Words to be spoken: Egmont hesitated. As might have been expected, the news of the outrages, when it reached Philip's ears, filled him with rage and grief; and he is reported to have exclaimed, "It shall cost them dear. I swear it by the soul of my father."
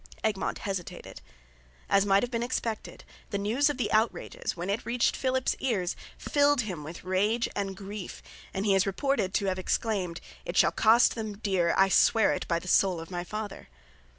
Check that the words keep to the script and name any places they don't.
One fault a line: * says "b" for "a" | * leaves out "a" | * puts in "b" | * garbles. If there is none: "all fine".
all fine